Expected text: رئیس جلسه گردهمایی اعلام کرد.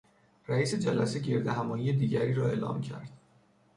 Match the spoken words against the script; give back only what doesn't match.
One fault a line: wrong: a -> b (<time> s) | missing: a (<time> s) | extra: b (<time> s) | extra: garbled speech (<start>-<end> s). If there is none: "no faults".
extra: دیگری را (1.9 s)